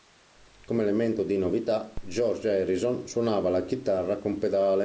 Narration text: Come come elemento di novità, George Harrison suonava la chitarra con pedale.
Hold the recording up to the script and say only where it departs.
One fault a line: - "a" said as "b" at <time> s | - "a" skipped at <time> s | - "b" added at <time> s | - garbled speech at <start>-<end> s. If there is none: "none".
- "come" skipped at 0.8 s